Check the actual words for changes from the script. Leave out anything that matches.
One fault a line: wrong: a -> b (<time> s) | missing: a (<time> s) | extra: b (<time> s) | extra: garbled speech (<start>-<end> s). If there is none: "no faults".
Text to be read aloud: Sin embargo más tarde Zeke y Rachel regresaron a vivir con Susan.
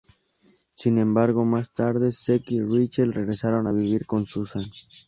no faults